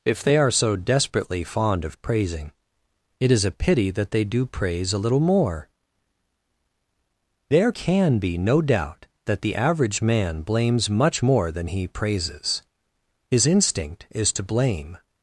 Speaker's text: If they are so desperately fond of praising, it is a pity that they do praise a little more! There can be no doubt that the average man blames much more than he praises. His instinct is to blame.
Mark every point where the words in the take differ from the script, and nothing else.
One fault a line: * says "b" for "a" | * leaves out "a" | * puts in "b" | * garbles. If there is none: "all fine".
all fine